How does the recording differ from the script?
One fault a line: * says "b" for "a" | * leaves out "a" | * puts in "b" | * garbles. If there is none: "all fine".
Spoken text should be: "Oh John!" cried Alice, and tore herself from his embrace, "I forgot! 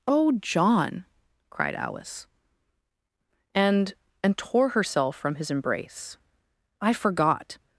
* puts in "and"